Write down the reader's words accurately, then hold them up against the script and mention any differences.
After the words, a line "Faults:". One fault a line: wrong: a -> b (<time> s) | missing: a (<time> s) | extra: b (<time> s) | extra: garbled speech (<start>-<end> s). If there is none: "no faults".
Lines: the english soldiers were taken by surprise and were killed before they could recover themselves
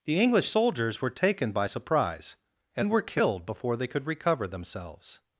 the english soldiers were taken by surprise and were killed before they could recover themselves
Faults:
no faults